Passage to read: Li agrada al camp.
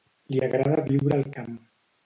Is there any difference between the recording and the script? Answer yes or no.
yes